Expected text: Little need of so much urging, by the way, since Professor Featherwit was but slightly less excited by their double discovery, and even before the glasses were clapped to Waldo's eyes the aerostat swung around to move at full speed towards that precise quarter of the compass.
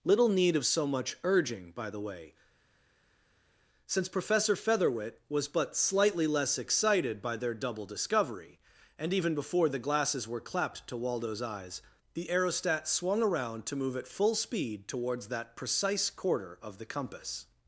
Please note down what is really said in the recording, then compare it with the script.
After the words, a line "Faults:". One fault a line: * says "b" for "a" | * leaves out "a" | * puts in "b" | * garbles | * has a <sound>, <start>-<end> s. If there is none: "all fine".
Little need of so much urging, by the way, since Professor Featherwit was but slightly less excited by their double discovery, and even before the glasses were clapped to Waldo's eyes the aerostat swung around to move at full speed towards that precise quarter of the compass.
Faults:
all fine